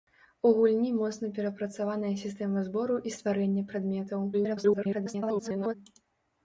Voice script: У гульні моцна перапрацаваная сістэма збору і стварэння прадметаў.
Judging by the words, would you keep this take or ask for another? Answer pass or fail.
fail